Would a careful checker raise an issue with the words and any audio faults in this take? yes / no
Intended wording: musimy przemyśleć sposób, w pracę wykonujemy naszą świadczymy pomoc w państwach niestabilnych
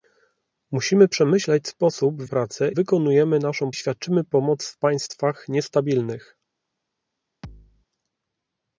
yes